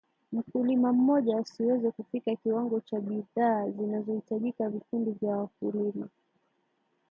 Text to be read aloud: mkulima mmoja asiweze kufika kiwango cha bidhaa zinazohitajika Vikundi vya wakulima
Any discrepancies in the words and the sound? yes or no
no